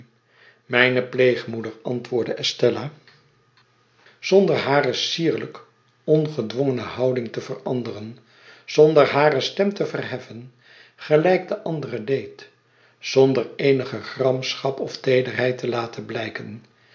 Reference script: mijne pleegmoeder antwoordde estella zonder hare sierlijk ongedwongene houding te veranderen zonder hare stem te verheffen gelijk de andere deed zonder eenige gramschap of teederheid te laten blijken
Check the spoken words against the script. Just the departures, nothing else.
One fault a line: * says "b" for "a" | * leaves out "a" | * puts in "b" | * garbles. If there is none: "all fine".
all fine